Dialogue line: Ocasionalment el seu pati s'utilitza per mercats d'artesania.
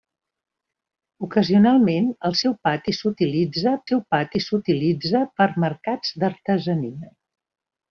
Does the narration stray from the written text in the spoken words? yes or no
yes